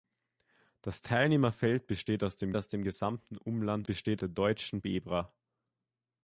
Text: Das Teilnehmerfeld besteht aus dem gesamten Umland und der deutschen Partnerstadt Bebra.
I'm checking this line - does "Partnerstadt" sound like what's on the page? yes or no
no